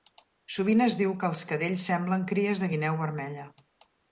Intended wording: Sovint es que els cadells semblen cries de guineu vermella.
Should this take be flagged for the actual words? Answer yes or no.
yes